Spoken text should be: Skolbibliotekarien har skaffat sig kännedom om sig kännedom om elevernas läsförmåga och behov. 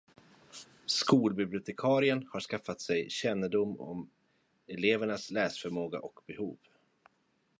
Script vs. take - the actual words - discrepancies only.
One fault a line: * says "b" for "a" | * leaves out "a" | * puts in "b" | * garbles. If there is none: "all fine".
* leaves out "sig kännedom om"